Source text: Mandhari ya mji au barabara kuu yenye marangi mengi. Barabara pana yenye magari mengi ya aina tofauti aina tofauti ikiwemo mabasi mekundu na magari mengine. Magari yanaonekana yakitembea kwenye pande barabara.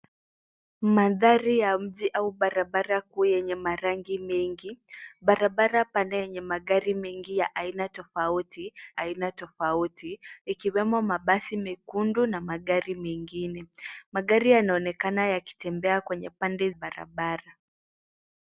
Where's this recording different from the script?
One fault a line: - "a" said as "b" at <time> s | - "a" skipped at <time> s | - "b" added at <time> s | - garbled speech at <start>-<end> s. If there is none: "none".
none